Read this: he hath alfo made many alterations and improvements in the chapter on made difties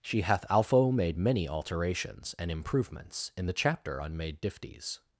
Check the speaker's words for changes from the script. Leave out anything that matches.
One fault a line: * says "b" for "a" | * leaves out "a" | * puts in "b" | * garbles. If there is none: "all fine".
* says "she" for "he"